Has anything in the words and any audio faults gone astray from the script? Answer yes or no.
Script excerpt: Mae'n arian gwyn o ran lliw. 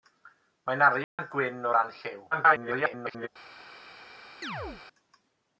yes